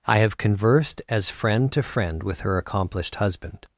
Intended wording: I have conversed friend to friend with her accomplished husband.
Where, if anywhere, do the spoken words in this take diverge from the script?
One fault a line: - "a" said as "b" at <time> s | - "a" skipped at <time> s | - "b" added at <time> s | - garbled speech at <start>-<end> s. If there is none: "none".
- "as" added at 1.1 s